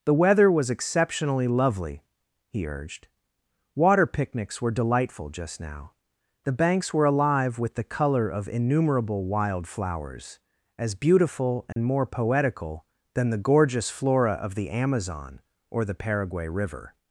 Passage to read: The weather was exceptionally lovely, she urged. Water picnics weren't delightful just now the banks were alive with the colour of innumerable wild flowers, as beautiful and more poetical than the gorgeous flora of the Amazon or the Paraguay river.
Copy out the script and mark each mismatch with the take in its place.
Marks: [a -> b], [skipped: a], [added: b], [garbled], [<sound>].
The weather was exceptionally lovely, [she -> he] urged. Water picnics [weren't -> were] delightful just now the banks were alive with the colour of innumerable wild flowers, as beautiful and [dropout] more poetical than the gorgeous flora of the Amazon or the Paraguay river.